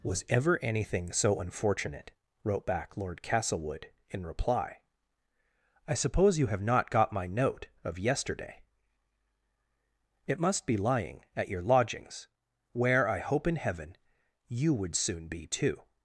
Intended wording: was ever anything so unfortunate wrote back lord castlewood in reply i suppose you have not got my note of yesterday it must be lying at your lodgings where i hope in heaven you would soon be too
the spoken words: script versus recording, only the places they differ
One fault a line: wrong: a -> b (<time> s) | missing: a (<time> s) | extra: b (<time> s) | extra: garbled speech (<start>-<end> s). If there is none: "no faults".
no faults